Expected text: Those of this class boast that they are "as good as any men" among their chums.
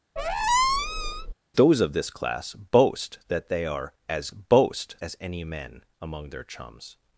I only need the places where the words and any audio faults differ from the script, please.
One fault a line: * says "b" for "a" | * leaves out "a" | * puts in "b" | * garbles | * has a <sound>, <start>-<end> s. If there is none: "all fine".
* has a squeak, 0.2-1.3 s
* says "boast" for "good"